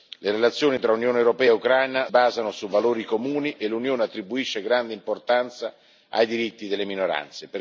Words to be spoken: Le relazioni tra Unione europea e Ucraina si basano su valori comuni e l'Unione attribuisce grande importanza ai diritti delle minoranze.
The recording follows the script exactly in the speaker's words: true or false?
false